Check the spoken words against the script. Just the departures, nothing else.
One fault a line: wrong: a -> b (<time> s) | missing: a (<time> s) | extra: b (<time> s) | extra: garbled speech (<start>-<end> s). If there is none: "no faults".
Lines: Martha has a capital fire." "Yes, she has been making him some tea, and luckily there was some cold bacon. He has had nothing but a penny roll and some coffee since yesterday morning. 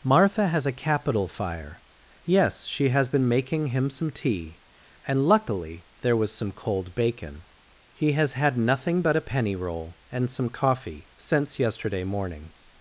no faults